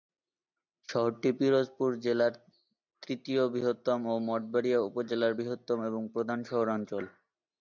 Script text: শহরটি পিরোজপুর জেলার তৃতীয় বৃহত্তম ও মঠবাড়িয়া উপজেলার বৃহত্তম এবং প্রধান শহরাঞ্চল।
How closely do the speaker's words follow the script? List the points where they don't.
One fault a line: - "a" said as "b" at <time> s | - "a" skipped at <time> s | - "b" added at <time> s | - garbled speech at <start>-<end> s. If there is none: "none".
none